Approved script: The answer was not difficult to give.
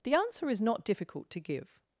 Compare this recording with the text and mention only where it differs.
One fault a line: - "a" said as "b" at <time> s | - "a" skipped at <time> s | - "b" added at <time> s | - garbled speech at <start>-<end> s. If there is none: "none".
- "was" said as "is" at 0.5 s